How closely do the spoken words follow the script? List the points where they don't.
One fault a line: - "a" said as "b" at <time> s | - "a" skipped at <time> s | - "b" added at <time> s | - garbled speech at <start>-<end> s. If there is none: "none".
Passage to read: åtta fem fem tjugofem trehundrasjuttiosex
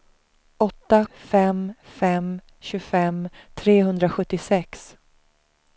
none